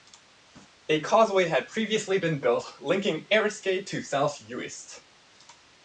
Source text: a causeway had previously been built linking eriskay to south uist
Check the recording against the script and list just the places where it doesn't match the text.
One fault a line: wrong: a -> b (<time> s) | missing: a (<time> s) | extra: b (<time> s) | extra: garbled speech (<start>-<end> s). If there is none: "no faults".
no faults